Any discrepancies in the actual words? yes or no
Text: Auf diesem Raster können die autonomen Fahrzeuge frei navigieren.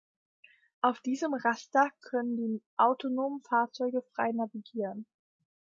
no